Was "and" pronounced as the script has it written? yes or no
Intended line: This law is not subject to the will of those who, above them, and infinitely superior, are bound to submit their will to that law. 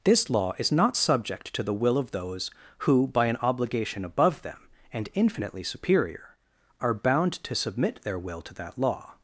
yes